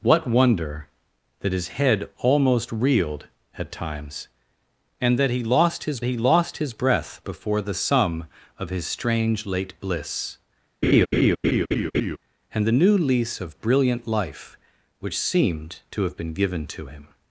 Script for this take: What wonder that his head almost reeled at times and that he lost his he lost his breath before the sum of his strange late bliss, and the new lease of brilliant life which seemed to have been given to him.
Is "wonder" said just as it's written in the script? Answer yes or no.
yes